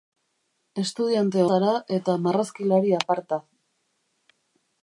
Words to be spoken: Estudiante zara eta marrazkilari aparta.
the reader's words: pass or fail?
pass